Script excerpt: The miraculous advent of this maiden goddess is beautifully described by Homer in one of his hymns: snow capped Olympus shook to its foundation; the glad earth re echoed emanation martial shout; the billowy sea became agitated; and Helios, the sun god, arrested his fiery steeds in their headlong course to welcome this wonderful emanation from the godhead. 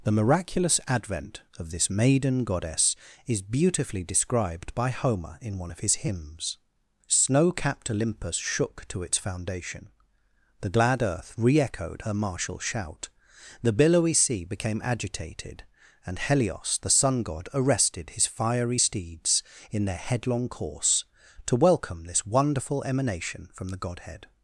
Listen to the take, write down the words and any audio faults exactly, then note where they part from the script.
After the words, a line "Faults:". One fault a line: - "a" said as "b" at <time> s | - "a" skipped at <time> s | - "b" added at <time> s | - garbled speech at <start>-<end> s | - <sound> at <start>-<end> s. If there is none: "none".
The miraculous advent of this maiden goddess is beautifully described by Homer in one of his hymns: snow capped Olympus shook to its foundation; the glad earth re echoed her martial shout; the billowy sea became agitated; and Helios, the sun god, arrested his fiery steeds in their headlong course to welcome this wonderful emanation from the godhead.
Faults:
- "emanation" said as "her" at 12.0 s